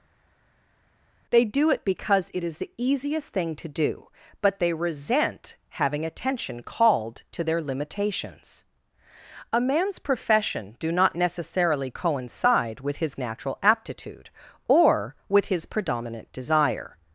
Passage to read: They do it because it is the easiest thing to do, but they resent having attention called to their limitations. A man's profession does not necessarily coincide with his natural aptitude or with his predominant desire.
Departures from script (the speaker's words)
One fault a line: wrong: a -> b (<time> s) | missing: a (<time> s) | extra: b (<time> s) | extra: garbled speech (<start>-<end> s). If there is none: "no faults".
wrong: does -> do (10.8 s)